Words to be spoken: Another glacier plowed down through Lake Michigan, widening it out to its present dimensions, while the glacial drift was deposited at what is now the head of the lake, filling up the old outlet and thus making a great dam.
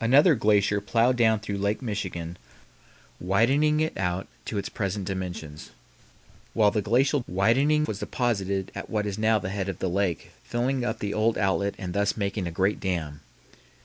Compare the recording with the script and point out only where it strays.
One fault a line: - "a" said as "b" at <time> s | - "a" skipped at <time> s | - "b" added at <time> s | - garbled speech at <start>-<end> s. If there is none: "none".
- "drift" said as "widening" at 7.3 s